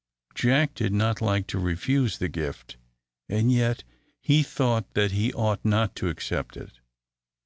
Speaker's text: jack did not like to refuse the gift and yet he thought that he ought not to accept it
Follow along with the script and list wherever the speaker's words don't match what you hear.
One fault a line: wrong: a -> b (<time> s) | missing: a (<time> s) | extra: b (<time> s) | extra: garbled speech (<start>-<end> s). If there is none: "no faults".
no faults